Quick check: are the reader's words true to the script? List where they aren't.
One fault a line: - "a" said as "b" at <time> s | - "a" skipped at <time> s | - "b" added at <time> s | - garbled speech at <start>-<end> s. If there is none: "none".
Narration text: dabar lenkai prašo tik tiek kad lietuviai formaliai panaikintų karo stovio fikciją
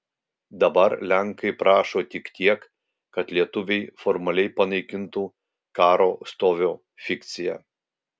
none